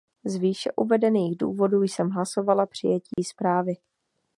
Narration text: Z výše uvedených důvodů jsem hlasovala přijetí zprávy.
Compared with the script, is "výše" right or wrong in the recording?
right